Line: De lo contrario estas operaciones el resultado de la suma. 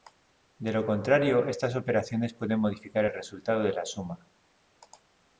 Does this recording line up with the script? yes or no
no